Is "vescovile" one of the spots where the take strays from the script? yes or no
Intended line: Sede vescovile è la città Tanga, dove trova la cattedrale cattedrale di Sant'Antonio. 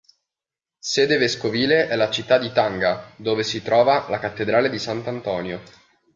no